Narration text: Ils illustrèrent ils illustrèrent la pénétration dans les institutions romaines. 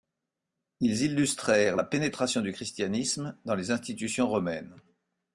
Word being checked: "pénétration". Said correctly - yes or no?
no